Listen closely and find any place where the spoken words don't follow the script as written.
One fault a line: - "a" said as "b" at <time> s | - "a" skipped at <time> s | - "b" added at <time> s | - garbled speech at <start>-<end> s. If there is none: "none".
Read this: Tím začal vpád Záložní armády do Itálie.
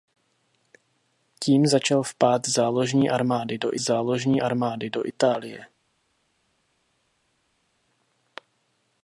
- "Záložní armády do" added at 3.8 s